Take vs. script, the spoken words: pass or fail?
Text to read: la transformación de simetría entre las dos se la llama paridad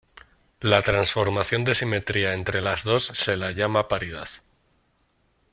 pass